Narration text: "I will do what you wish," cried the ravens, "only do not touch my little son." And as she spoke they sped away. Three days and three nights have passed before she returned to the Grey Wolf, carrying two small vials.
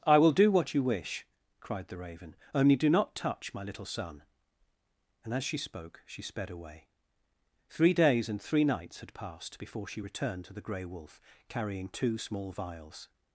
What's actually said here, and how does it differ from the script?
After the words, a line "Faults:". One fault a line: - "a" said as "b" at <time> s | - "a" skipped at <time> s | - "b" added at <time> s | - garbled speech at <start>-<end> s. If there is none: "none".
"I will do what you wish," cried the raven, "only do not touch my little son." And as she spoke she sped away. Three days and three nights had passed before she returned to the Grey Wolf, carrying two small vials.
Faults:
- "ravens" said as "raven" at 2.0 s
- "they" said as "she" at 6.1 s
- "have" said as "had" at 9.0 s